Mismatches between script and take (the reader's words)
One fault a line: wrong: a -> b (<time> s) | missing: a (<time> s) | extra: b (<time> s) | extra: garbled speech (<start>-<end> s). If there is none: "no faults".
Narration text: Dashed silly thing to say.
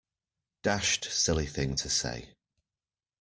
no faults